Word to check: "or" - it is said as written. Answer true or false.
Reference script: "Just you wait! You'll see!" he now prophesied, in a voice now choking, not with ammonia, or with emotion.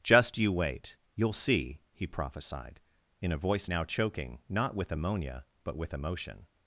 false